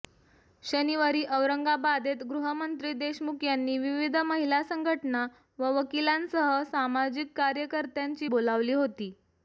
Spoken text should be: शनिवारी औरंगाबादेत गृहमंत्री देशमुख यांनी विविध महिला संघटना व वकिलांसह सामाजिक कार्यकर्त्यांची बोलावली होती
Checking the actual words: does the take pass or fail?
pass